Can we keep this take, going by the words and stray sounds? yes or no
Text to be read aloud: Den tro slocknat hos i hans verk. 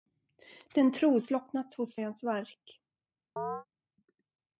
no